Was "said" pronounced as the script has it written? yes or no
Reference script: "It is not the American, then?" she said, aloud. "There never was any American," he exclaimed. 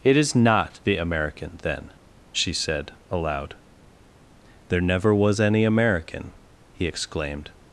yes